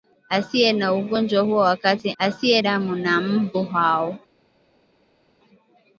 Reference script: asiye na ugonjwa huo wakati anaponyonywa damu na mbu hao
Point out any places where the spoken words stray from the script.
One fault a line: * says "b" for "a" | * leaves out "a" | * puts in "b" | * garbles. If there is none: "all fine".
* says "asiye" for "anaponyonywa"